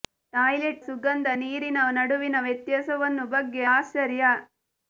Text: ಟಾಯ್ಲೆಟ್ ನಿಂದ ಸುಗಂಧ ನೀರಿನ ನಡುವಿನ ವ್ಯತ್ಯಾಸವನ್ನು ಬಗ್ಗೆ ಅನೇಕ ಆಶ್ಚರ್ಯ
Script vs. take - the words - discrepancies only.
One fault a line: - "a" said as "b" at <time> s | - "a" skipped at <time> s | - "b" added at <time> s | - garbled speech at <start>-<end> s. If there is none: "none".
- "ನಿಂದ" skipped at 0.9 s
- "ಅನೇಕ" skipped at 3.6 s